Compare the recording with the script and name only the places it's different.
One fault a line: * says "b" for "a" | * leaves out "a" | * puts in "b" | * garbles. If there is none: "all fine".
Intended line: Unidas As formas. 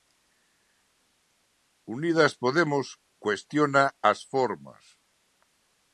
* puts in "Podemos cuestiona"